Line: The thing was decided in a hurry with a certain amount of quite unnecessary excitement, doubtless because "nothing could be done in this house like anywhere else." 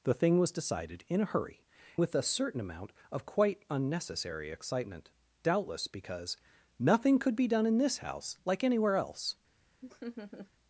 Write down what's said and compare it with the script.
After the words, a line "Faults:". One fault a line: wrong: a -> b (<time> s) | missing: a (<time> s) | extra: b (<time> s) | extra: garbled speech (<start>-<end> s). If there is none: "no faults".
The thing was decided in a hurry with a certain amount of quite unnecessary excitement, doubtless because "nothing could be done in this house like anywhere else."
Faults:
no faults